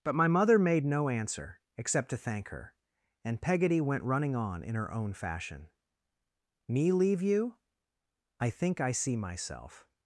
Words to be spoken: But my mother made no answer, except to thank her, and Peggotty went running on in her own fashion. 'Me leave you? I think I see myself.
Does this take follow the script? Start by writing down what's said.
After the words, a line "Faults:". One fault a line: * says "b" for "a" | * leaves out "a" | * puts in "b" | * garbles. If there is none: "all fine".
But my mother made no answer, except to thank her, and Peggotty went running on in her own fashion. 'Me leave you? I think I see myself.
Faults:
all fine